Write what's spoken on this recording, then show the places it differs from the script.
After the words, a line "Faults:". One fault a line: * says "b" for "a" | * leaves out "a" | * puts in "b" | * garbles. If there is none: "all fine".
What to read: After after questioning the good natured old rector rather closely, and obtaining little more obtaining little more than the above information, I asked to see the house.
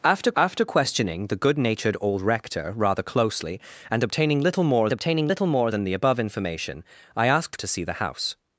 After after questioning the good natured old rector rather closely, and obtaining little more obtaining little more than the above information, I asked to see the house.
Faults:
all fine